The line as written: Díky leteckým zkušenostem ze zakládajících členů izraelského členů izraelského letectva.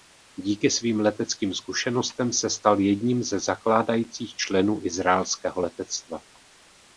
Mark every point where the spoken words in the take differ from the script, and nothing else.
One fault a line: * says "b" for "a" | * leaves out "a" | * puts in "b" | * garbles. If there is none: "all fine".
* puts in "svým"
* puts in "se stal jedním"
* leaves out "členů izraelského"